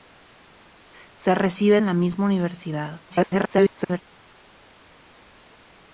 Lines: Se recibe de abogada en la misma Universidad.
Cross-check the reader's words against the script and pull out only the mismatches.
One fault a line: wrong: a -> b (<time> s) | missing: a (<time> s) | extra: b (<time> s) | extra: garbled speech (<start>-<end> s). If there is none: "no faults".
missing: de abogada (1.8 s)
extra: garbled speech (3.1-4.0 s)